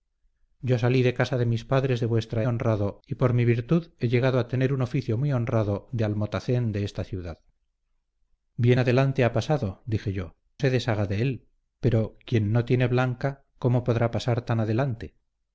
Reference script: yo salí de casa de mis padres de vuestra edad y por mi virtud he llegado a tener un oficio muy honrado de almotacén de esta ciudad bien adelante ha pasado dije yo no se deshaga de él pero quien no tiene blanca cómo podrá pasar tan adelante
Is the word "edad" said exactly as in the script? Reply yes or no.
no